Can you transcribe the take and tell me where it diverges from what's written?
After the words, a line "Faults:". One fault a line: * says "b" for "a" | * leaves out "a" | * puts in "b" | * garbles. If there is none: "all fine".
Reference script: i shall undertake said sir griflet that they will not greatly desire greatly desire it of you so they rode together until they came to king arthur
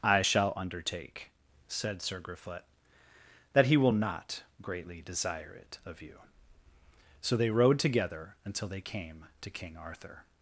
i shall undertake said sir griflet that he will not greatly desire it of you so they rode together until they came to king arthur
Faults:
* says "he" for "they"
* leaves out "greatly desire"